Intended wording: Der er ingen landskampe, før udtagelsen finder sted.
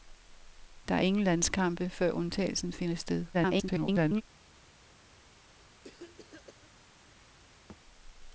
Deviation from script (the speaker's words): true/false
true